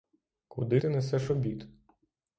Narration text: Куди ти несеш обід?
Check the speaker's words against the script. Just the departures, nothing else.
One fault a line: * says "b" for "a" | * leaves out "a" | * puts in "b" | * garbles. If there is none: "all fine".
all fine